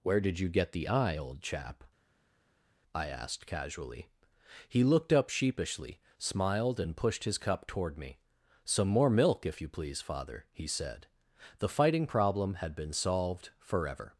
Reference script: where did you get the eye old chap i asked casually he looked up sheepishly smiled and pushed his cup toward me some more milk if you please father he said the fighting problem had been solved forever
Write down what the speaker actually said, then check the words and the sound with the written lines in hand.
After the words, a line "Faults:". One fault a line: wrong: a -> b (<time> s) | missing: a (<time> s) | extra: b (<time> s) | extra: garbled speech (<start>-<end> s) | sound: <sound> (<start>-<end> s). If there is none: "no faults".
where did you get the eye old chap i asked casually he looked up sheepishly smiled and pushed his cup toward me some more milk if you please father he said the fighting problem had been solved forever
Faults:
no faults